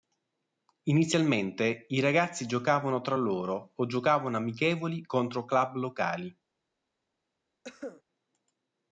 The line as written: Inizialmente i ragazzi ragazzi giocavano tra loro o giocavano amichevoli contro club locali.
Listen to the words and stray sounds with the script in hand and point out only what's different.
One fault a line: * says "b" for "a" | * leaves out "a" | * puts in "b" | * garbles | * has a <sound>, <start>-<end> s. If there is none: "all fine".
* leaves out "ragazzi"
* has a cough, 7.6-8.0 s